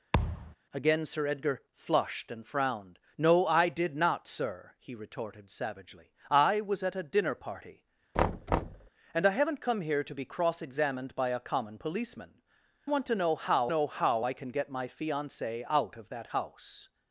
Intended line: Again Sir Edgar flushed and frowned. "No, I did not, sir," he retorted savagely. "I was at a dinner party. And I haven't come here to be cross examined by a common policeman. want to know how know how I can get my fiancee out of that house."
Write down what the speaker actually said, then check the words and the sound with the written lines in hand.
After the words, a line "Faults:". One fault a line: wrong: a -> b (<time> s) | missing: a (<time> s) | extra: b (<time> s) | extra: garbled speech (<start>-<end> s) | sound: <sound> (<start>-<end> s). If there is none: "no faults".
Again Sir Edgar flushed and frowned. "No, I did not, sir," he retorted savagely. "I was at a dinner party. And I haven't come here to be cross examined by a common policeman. want to know how know how I can get my fiancee out of that house."
Faults:
sound: thud (0.1-0.6 s)
sound: thud (8.1-8.9 s)